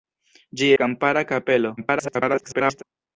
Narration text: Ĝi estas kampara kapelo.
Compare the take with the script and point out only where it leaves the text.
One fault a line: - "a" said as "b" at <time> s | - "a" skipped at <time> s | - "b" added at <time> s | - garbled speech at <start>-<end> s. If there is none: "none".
- "estas" skipped at 0.7 s
- garbled speech at 1.8-2.8 s